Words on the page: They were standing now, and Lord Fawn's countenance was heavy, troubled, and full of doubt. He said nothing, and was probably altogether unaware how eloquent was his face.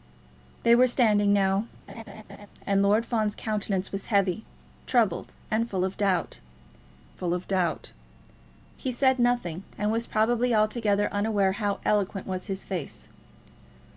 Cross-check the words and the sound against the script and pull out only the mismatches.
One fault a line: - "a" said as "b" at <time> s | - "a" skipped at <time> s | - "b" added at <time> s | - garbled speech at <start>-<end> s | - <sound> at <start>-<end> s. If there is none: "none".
- laugh at 1.9-2.5 s
- "full of doubt" added at 7.2 s